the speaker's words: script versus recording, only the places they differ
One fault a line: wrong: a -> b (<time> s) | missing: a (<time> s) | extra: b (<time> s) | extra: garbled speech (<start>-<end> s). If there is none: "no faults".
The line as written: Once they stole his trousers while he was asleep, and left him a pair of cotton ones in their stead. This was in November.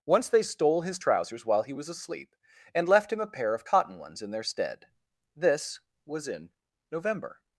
no faults